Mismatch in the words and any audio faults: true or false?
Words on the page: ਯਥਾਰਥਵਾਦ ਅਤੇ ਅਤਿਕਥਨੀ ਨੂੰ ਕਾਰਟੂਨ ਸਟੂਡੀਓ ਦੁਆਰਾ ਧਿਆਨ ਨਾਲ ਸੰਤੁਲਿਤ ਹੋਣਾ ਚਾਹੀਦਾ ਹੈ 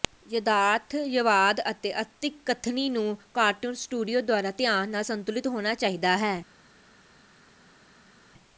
false